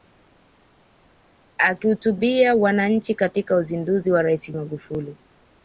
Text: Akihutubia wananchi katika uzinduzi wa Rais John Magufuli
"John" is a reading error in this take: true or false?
true